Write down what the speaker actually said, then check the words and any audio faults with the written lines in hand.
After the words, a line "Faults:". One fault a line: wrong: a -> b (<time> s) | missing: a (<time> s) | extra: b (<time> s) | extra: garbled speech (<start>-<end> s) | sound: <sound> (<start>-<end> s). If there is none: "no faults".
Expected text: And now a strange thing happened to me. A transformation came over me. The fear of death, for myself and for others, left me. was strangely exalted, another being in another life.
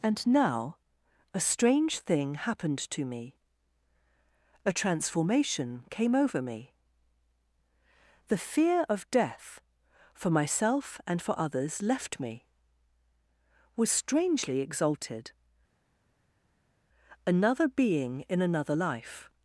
And now a strange thing happened to me. A transformation came over me. The fear of death, for myself and for others, left me. was strangely exalted, another being in another life.
Faults:
no faults